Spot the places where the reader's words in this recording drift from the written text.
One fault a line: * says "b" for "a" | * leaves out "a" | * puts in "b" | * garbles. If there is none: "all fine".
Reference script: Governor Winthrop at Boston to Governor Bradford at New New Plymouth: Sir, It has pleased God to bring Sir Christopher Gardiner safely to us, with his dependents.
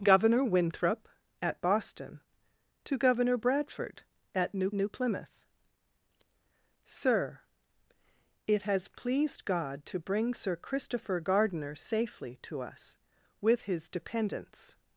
all fine